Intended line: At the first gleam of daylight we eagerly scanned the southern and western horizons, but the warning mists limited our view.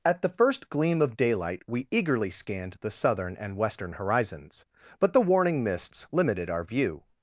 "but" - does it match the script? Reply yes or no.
yes